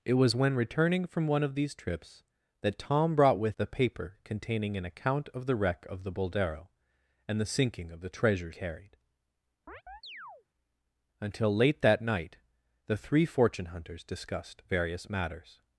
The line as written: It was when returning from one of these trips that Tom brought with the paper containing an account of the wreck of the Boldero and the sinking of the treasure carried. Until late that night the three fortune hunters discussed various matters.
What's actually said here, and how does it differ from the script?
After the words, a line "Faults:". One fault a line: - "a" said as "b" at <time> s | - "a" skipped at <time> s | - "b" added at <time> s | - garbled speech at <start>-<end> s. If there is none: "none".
It was when returning from one of these trips that Tom brought with the paper containing an account of the wreck of the Boldero and the sinking of the treasure carried. Until late that night the three fortune hunters discussed various matters.
Faults:
none